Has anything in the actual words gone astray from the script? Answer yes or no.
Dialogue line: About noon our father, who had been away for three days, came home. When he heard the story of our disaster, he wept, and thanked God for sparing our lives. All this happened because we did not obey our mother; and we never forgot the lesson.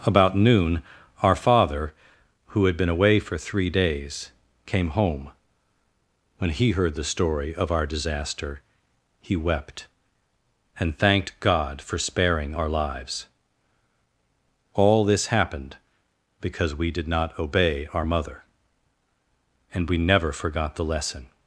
no